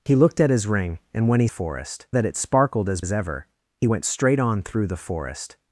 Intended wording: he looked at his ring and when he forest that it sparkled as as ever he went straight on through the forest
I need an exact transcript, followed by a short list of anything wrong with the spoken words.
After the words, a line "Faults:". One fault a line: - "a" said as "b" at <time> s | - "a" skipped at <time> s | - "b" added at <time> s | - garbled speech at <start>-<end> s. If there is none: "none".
he looked at his ring and when he forest that it sparkled as as ever he went straight on through the forest
Faults:
none